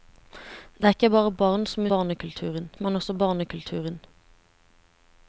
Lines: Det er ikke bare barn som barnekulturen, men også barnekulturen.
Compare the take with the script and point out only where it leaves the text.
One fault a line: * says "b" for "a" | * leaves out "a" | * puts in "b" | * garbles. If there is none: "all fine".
all fine